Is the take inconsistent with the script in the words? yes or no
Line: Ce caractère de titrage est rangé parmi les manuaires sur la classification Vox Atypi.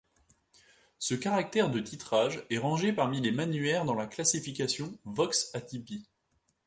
yes